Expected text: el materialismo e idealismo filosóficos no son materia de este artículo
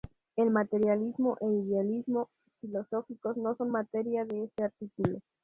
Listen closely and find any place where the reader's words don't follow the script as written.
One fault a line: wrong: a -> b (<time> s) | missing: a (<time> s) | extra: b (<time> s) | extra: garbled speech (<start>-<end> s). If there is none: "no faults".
no faults